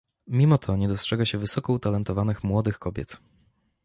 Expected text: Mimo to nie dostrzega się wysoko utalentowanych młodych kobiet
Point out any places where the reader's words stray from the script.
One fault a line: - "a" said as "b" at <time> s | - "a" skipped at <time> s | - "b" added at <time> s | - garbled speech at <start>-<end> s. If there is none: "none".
none